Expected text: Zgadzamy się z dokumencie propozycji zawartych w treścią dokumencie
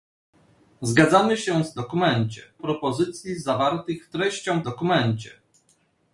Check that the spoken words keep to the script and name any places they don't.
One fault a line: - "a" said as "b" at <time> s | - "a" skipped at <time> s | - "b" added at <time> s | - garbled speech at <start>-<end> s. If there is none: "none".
none